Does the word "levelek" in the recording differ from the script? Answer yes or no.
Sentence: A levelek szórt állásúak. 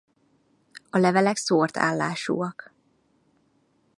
no